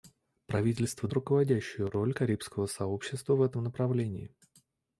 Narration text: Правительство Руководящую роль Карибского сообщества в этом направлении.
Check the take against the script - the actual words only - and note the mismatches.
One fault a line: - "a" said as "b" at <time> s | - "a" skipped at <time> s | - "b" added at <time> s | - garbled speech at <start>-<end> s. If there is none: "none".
none